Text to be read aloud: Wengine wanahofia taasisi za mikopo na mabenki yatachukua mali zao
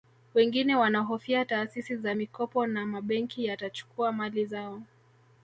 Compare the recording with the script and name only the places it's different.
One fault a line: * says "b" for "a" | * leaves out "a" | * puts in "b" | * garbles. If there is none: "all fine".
all fine